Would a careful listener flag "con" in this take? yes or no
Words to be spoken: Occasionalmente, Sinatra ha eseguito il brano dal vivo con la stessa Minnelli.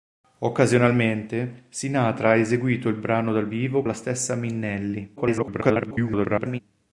yes